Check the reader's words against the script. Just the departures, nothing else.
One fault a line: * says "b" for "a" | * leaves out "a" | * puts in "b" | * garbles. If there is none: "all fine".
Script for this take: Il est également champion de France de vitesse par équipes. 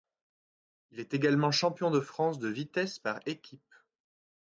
all fine